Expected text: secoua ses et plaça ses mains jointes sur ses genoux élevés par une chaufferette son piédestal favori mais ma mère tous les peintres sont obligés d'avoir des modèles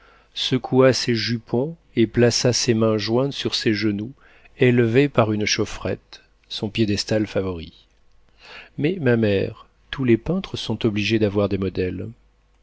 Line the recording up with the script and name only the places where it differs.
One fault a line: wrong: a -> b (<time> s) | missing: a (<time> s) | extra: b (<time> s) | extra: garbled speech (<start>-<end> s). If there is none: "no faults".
extra: jupons (1.1 s)